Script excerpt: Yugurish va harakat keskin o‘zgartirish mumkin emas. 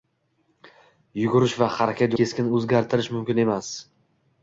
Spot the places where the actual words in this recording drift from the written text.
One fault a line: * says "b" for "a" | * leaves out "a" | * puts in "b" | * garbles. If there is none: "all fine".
all fine